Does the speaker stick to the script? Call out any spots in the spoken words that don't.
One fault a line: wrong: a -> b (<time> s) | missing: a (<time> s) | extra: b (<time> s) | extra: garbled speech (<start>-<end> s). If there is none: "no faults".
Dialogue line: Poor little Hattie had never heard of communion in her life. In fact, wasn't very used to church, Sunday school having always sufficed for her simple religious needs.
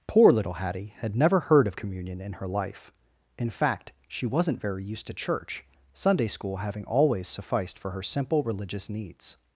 extra: she (4.1 s)